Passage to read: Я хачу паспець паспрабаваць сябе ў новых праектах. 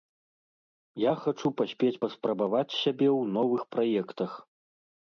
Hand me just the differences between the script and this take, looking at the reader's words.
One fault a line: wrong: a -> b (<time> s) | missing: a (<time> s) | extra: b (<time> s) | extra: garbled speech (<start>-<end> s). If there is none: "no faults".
no faults